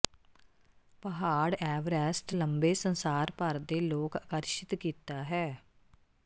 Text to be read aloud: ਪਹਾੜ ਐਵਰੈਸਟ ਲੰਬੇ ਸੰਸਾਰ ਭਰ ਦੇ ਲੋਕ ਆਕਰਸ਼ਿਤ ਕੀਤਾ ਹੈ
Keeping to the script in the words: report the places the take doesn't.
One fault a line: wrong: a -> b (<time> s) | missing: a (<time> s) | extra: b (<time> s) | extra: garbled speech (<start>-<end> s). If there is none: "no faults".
no faults